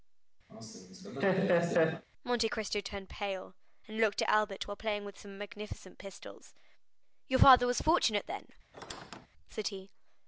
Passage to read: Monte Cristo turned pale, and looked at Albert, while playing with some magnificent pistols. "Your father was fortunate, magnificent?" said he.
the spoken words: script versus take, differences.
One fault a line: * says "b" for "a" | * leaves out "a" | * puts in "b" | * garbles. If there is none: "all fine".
* says "then" for "magnificent"